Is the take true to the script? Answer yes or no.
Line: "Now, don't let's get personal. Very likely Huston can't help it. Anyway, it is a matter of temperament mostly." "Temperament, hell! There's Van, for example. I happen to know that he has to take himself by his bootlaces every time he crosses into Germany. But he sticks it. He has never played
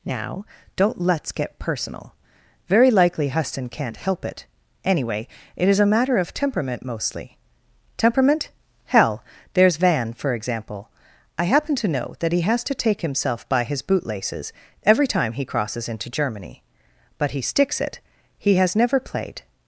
yes